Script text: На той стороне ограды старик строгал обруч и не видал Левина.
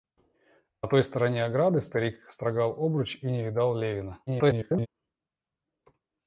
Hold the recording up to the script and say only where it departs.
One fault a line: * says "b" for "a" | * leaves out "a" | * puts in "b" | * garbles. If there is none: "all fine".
* garbles